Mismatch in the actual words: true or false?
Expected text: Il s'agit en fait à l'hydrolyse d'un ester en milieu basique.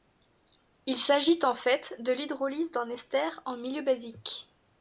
true